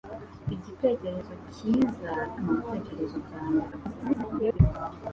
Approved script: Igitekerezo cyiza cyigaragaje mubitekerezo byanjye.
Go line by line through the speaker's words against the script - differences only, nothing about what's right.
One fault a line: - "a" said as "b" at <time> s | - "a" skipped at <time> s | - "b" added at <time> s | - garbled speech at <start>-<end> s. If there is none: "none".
- "cyigaragaje" skipped at 2.1 s
- garbled speech at 3.7-4.6 s